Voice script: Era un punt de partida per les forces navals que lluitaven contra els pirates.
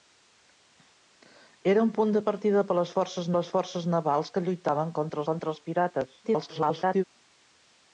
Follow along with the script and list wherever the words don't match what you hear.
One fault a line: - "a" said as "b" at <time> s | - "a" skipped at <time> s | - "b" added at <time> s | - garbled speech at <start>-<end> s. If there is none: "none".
- "les forces" added at 3.4 s
- "contra" added at 5.3 s
- garbled speech at 6.2-7.0 s